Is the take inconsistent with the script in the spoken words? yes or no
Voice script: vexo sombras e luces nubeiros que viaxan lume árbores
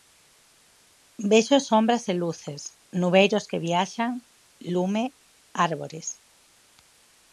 no